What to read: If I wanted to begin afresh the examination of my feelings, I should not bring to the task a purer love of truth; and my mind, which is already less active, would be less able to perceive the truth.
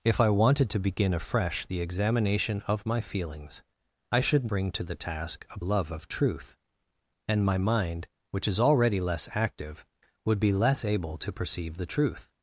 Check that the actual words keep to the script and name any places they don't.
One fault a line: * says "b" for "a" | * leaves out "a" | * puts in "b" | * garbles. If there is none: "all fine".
* leaves out "not"
* leaves out "purer"